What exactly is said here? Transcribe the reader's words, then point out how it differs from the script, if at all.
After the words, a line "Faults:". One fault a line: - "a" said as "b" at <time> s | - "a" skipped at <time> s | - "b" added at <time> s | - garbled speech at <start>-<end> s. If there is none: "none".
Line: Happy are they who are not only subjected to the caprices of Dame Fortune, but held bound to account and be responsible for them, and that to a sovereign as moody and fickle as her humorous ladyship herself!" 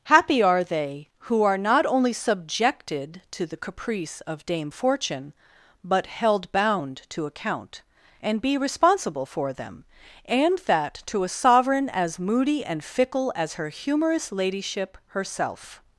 Happy are they who are not only subjected to the caprice of Dame Fortune, but held bound to account and be responsible for them, and that to a sovereign as moody and fickle as her humorous ladyship herself!"
Faults:
- "caprices" said as "caprice" at 3.6 s